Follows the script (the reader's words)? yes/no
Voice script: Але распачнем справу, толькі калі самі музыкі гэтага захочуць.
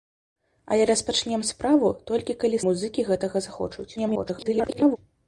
no